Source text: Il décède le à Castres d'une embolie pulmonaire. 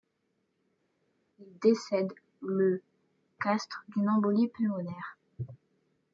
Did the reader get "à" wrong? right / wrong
wrong